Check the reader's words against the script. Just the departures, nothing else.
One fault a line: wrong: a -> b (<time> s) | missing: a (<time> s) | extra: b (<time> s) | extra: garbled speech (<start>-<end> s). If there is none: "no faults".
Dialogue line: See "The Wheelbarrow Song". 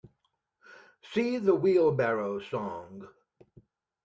no faults